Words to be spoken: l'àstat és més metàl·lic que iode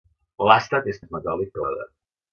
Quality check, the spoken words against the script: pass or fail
pass